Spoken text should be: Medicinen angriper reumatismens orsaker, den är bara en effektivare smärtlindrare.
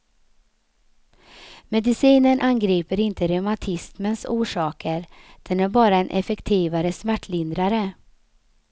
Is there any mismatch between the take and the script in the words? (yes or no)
yes